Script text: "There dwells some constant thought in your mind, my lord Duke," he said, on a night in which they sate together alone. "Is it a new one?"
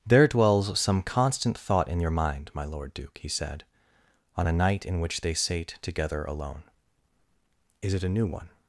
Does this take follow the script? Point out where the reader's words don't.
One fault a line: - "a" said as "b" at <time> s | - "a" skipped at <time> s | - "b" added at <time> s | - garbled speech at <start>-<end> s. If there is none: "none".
none